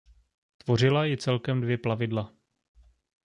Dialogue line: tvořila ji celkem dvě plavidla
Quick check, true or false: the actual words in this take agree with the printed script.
true